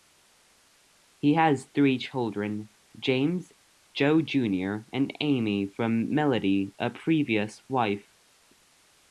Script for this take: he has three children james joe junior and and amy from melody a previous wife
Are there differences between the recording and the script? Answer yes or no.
yes